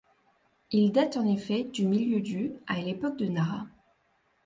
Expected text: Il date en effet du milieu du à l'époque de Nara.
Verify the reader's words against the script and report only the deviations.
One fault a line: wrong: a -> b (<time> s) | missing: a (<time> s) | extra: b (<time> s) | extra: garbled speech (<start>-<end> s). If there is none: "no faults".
no faults